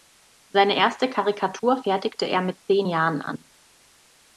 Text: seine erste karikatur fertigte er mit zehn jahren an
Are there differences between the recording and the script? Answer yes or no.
no